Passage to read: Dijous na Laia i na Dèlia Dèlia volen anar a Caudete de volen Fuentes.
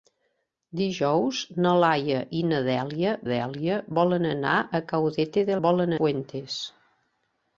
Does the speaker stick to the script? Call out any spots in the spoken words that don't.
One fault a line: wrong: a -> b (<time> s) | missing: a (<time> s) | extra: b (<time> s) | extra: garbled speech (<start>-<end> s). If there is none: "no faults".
no faults